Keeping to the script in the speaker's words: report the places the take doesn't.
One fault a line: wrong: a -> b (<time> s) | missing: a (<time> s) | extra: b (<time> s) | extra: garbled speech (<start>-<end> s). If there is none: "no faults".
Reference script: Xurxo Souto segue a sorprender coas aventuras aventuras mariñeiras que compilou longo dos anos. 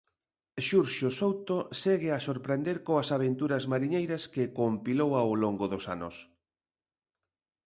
missing: aventuras (3.6 s)
extra: ao (5.2 s)